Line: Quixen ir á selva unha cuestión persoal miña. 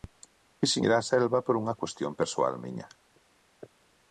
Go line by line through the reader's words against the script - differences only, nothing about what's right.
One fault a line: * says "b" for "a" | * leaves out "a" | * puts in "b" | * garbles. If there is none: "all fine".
* puts in "por"